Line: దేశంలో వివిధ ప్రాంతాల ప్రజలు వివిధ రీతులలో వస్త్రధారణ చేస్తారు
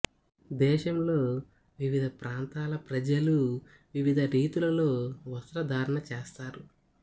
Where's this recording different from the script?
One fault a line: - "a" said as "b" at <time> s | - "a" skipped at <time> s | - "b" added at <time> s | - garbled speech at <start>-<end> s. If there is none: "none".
none